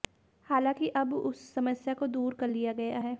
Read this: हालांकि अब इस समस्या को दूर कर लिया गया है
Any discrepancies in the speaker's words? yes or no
yes